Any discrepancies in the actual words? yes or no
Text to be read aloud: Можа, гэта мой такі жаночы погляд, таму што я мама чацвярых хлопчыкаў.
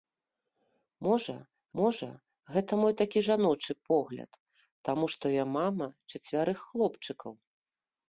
yes